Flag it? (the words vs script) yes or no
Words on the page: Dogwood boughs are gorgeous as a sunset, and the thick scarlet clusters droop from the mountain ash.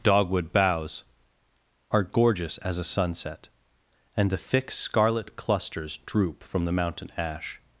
no